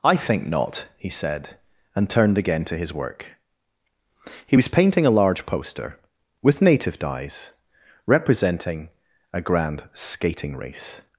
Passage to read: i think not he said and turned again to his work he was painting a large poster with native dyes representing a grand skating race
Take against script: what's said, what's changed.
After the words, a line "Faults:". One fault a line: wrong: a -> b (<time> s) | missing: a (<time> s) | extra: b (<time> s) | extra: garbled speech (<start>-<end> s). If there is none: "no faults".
i think not he said and turned again to his work he was painting a large poster with native dyes representing a grand skating race
Faults:
no faults